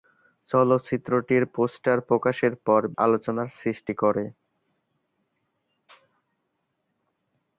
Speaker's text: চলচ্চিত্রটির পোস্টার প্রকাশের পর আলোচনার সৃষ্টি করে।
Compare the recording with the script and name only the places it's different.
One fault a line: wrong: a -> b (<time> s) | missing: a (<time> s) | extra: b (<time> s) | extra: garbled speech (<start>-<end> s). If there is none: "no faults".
no faults